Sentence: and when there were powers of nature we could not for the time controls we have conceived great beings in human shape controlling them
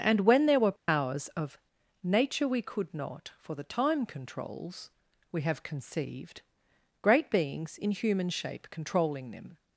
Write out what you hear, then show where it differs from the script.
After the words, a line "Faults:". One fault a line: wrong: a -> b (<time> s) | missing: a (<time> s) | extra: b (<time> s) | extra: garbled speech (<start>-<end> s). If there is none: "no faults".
and when there were powers of nature we could not for the time controls we have conceived great beings in human shape controlling them
Faults:
no faults